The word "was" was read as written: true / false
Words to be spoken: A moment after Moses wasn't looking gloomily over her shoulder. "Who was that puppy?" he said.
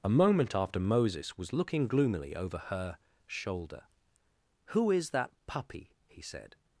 false